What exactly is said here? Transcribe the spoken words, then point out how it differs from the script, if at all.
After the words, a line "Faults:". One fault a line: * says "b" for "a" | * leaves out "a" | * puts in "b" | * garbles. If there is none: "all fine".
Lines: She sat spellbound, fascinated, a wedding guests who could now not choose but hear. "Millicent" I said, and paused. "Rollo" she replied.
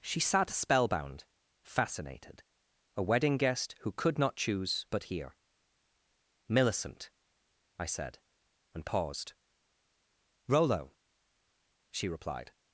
She sat spellbound, fascinated, a wedding guest who could not choose but hear. "Millicent" I said, and paused. "Rollo" she replied.
Faults:
* says "guest" for "guests"
* leaves out "now"